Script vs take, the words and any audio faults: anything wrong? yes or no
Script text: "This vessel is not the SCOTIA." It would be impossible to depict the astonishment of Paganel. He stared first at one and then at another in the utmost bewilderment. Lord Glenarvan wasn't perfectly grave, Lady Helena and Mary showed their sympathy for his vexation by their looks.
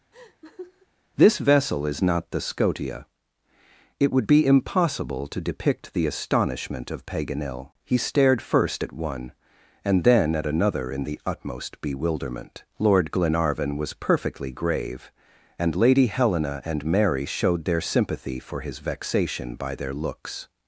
yes